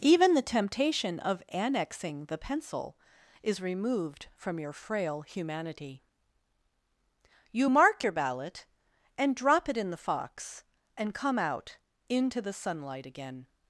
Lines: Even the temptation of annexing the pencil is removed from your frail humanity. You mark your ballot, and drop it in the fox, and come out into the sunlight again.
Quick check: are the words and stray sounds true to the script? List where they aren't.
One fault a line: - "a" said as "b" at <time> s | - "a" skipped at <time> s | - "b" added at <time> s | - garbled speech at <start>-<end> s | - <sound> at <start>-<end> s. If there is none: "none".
none